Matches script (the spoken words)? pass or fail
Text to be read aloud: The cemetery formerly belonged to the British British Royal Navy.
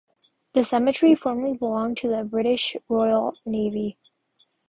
fail